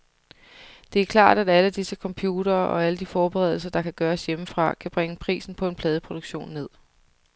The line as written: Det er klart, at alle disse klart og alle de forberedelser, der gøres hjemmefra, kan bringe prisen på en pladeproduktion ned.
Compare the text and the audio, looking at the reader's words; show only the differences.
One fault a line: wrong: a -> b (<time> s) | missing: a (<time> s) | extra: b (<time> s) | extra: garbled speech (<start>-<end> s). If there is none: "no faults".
wrong: klart -> computere (1.9 s)
extra: kan (3.8 s)